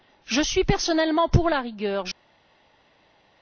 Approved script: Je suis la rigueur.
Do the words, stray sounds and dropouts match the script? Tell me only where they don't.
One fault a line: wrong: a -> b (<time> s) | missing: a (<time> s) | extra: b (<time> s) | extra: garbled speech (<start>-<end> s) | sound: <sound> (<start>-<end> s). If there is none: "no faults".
extra: personnellement pour (0.6 s)